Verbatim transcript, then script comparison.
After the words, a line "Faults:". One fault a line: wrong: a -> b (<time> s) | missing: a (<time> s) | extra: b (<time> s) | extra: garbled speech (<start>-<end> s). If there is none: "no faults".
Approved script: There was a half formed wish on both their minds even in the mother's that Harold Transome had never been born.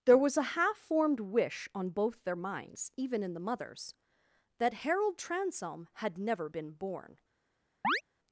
There was a half formed wish on both their minds even in the mother's that Harold Transome had never been born.
Faults:
no faults